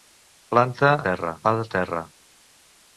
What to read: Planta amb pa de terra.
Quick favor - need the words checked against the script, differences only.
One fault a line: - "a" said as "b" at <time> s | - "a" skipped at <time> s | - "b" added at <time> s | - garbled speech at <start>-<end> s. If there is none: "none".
- "amb" said as "terra" at 1.1 s